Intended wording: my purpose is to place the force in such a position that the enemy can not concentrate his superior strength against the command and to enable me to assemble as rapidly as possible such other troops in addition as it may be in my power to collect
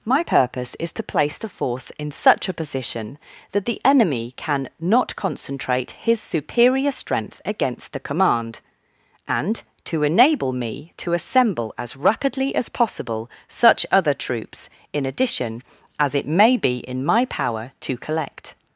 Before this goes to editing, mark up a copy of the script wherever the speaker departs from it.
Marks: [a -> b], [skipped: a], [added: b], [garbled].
my purpose is to place the force in such a position that the enemy can not concentrate his superior strength against the command and to enable me to assemble as rapidly as possible such other troops in addition as it may be in my power to collect